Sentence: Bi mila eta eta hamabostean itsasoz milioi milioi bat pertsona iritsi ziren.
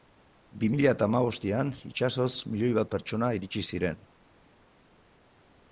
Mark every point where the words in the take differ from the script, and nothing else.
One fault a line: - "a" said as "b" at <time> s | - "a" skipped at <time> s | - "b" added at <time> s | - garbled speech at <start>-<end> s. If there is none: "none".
- "eta" skipped at 1.1 s
- "milioi" skipped at 2.7 s